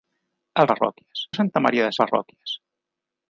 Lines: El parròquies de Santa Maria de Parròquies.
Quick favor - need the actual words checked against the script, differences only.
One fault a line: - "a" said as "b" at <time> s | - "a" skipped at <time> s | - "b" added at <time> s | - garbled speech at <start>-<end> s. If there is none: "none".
none